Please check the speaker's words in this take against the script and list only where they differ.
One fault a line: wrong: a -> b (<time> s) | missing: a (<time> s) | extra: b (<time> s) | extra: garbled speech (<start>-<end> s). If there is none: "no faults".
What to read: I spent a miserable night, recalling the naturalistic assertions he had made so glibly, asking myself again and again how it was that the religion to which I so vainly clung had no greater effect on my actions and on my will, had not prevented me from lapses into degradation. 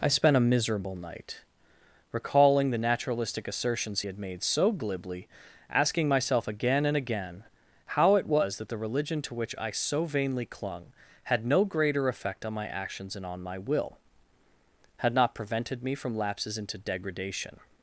missing: he (4.0 s)